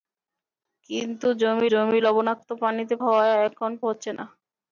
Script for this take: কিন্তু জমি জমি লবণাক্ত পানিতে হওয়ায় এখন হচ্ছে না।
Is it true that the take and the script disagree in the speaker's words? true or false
false